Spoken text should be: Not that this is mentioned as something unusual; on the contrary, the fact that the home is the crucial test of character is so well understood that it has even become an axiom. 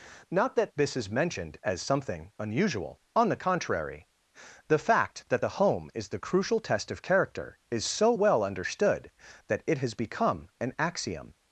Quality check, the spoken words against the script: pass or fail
fail